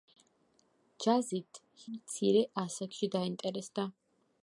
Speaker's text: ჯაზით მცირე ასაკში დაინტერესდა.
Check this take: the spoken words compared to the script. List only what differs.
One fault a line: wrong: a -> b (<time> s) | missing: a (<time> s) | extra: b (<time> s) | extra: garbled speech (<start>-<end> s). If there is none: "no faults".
no faults